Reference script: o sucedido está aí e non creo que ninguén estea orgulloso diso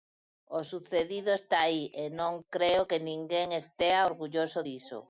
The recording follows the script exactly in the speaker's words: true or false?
true